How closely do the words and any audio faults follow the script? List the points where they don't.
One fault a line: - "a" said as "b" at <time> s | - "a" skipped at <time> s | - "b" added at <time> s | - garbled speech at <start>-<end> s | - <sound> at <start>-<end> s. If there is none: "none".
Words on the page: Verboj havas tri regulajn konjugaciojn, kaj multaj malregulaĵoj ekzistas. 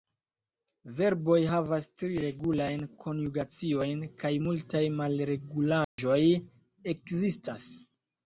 - dropout at 5.8-6.0 s